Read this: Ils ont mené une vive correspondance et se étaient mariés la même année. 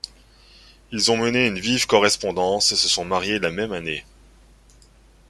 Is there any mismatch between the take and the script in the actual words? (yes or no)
yes